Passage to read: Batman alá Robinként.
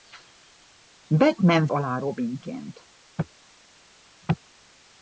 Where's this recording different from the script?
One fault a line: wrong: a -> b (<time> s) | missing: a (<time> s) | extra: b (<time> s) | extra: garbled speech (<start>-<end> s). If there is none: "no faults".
no faults